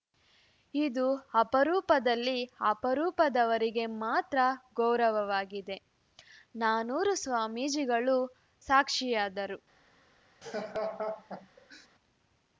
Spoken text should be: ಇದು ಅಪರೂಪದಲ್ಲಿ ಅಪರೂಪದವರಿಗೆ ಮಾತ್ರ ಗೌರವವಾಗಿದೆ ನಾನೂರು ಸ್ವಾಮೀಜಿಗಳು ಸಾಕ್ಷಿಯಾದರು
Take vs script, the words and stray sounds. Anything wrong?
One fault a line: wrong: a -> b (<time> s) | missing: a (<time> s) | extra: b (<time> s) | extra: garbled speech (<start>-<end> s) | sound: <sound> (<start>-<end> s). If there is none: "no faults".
sound: laugh (10.4-11.9 s)